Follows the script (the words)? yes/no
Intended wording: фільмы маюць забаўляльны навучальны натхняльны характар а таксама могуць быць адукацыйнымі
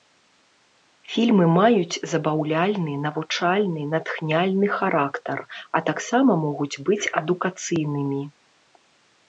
yes